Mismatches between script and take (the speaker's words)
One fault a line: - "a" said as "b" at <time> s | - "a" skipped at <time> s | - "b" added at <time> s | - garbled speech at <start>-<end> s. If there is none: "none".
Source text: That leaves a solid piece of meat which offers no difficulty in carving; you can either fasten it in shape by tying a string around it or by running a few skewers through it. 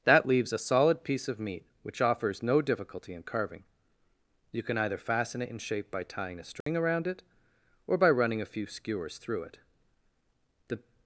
- "The" added at 10.7 s